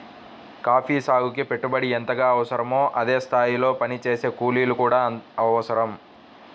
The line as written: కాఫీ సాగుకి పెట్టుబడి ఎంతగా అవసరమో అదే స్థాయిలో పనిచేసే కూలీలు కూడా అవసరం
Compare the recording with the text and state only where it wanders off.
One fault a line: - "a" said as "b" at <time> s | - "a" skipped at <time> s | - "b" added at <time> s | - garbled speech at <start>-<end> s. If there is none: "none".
none